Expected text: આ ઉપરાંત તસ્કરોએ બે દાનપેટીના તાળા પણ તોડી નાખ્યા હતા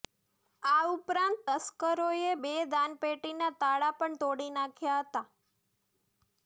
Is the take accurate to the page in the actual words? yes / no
yes